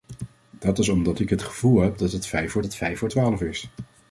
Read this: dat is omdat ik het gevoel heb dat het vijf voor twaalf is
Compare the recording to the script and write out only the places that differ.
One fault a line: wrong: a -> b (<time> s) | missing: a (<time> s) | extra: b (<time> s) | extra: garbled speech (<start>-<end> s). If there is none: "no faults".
extra: het vijf voor (2.6 s)